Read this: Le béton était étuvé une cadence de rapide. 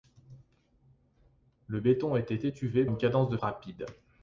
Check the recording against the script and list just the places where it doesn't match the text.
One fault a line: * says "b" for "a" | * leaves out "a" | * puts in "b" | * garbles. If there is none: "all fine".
all fine